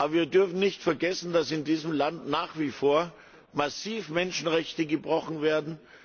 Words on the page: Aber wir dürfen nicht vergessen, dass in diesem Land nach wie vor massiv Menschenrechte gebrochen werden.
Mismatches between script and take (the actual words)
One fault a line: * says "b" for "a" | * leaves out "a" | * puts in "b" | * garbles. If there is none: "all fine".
all fine